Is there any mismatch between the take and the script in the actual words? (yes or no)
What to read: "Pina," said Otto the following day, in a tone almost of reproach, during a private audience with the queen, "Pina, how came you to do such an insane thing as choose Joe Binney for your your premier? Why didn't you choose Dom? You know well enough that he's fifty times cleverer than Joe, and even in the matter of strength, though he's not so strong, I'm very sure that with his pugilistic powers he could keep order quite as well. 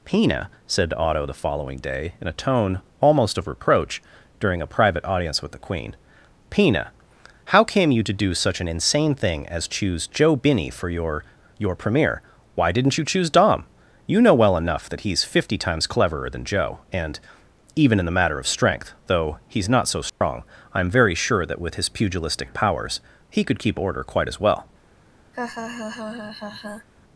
no